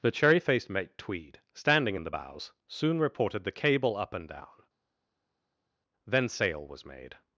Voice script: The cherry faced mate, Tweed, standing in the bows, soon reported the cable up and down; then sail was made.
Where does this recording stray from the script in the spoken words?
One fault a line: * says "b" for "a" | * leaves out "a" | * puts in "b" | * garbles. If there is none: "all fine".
all fine